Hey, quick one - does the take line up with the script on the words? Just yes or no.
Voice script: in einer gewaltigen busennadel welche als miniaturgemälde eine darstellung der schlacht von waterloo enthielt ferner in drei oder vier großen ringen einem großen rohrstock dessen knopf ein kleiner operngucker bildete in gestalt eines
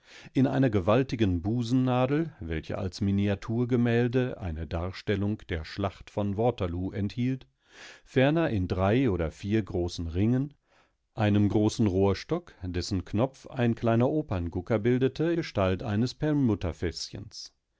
no